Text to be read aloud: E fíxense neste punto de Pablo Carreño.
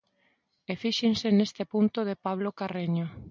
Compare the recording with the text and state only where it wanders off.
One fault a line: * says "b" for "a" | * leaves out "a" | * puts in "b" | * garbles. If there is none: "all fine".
all fine